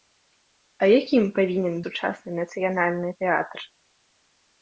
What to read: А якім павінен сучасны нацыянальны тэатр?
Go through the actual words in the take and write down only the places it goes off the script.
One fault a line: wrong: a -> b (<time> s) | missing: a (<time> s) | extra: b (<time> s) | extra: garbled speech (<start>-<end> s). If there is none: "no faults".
no faults